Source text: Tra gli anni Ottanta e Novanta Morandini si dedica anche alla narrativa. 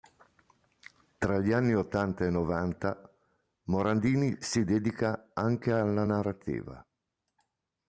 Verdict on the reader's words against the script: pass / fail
pass